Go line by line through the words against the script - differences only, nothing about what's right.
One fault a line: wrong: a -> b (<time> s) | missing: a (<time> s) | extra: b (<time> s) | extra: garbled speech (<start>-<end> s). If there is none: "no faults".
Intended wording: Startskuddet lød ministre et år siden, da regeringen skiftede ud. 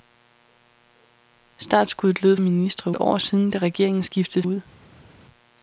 no faults